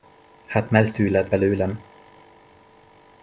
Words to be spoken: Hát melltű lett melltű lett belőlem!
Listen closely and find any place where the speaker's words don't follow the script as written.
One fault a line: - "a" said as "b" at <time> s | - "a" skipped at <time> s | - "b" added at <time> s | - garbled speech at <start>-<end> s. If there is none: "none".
- "melltű lett" skipped at 1.3 s